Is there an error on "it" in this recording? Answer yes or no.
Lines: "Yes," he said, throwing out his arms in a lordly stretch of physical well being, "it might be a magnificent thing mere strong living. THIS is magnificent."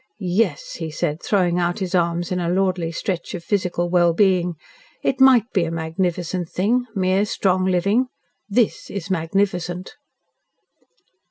no